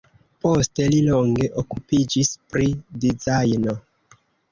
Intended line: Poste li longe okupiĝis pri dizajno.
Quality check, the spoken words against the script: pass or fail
pass